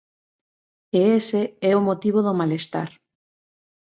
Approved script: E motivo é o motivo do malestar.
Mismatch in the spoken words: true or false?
true